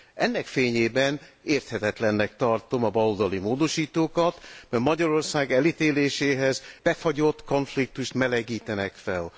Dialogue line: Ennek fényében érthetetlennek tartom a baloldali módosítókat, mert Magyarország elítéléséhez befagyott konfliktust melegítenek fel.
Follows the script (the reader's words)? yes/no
yes